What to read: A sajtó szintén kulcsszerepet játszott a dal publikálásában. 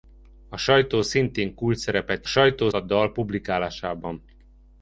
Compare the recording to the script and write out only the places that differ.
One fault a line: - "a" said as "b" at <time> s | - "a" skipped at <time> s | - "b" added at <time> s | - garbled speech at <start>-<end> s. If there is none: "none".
- "játszott" said as "sajtó" at 2.2 s